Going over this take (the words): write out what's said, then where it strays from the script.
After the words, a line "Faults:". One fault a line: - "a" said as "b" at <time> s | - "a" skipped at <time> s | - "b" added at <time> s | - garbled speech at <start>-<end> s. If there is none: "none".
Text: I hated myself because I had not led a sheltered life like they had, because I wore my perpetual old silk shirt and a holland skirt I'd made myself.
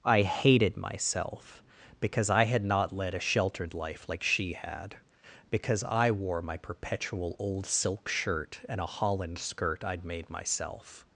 I hated myself because I had not led a sheltered life like she had, because I wore my perpetual old silk shirt and a holland skirt I'd made myself.
Faults:
- "they" said as "she" at 4.2 s